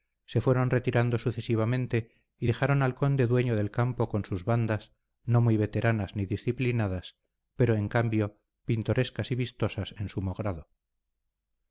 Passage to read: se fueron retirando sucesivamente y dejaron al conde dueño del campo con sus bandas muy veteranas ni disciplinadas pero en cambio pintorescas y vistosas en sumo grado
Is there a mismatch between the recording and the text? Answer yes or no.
yes